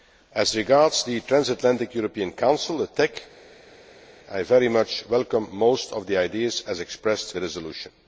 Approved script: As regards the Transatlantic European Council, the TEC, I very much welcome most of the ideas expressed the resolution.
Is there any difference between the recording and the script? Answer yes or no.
no